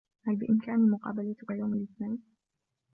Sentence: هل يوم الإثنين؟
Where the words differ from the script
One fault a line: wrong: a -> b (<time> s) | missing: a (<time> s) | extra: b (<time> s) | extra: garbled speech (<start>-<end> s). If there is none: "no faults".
extra: بإمكاني مقابلتك (0.3 s)